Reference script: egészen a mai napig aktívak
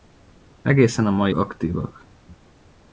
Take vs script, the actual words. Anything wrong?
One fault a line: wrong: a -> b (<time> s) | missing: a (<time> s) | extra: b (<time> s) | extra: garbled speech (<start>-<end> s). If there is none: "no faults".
missing: napig (1.3 s)